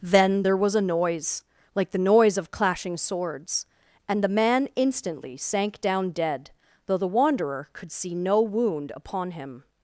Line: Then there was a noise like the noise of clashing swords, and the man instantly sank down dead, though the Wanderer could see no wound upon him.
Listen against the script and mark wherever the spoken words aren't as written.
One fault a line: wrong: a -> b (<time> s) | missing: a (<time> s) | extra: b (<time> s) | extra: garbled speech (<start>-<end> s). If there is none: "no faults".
no faults